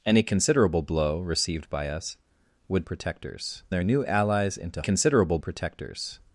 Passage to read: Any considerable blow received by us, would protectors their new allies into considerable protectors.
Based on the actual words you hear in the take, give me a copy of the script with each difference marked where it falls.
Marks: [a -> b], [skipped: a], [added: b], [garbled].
Any considerable blow received by us, would protectors their new allies into considerable protectors.